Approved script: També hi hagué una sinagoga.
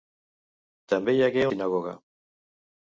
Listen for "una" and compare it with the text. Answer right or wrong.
wrong